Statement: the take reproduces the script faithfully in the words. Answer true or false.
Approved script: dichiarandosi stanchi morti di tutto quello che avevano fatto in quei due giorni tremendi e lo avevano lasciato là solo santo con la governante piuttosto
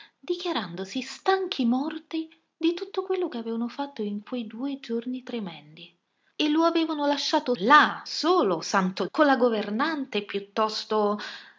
true